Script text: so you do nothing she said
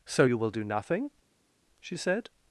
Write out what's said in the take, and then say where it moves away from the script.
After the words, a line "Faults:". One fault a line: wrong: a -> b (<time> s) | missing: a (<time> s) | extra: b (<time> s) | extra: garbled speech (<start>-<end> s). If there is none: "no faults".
so you will do nothing she said
Faults:
extra: will (0.4 s)